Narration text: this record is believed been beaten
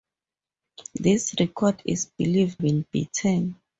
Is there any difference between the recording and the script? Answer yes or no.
no